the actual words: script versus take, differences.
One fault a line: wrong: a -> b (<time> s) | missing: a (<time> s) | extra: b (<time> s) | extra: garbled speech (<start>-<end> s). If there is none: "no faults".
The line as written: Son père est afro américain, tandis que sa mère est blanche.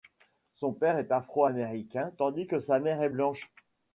no faults